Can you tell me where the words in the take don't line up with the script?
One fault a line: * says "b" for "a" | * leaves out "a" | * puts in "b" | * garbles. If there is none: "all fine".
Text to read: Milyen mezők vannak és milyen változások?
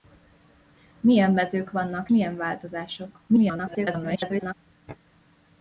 * leaves out "és"
* garbles